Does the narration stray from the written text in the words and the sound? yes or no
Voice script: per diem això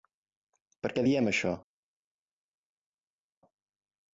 yes